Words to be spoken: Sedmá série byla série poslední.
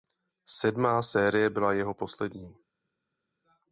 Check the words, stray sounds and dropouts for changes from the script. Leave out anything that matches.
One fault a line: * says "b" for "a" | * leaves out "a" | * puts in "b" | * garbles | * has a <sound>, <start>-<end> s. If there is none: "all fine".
* says "jeho" for "série"